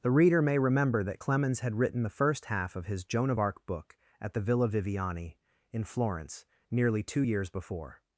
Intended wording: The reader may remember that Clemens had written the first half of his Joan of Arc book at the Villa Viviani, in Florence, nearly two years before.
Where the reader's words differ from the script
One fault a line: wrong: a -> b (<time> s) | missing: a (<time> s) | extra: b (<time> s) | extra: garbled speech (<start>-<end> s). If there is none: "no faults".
no faults